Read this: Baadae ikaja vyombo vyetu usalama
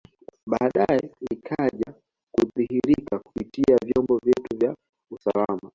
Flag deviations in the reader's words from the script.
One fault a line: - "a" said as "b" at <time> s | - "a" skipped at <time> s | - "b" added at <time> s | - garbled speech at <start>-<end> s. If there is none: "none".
- "kudhihirika kupitia" added at 2.3 s
- "vya" added at 4.6 s